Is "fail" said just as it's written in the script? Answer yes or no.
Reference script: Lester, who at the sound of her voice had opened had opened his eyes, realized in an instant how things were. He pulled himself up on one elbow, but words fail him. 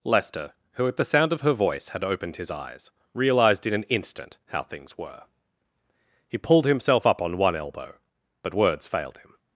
no